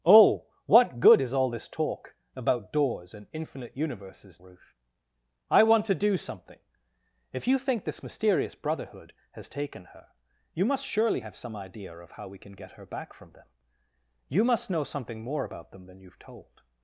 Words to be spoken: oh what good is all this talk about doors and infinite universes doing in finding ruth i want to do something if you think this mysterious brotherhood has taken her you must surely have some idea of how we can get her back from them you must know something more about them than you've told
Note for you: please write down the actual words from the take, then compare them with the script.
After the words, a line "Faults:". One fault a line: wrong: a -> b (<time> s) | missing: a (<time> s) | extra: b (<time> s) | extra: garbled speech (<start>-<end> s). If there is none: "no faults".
oh what good is all this talk about doors and infinite universes ruth i want to do something if you think this mysterious brotherhood has taken her you must surely have some idea of how we can get her back from them you must know something more about them than you've told
Faults:
missing: doing in finding (4.4 s)